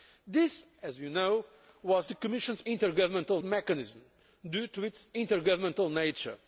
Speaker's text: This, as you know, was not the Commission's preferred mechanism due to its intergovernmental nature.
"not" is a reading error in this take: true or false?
true